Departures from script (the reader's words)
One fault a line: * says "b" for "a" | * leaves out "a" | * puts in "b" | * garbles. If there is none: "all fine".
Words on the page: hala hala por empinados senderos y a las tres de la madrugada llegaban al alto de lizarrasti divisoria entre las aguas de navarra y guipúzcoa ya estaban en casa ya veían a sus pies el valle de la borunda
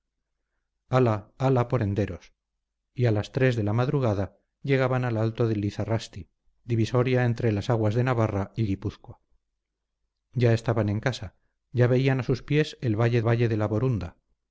* leaves out "empinados"
* puts in "valle"